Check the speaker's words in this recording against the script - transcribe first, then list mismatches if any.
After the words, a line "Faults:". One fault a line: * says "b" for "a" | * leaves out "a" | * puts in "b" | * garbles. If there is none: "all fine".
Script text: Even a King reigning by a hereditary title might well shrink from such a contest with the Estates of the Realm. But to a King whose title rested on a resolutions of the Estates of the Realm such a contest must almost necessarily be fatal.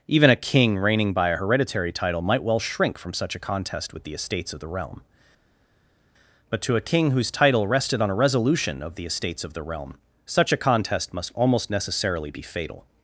Even a King reigning by a hereditary title might well shrink from such a contest with the Estates of the Realm. But to a King whose title rested on a resolution of the Estates of the Realm such a contest must almost necessarily be fatal.
Faults:
* says "resolution" for "resolutions"